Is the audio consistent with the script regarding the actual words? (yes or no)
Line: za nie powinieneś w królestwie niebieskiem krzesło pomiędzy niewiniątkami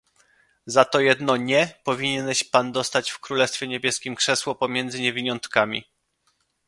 no